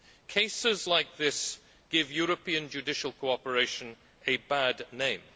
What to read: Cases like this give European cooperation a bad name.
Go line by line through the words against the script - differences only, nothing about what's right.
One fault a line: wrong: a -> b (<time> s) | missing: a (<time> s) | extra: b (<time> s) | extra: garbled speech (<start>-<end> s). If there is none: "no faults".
extra: judicial (2.7 s)